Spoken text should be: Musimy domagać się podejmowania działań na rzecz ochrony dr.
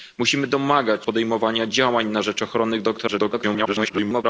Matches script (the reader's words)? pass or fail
fail